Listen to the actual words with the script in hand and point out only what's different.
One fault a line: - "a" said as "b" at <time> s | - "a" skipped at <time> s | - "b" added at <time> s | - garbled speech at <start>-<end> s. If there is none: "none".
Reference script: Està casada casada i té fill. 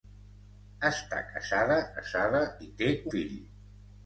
none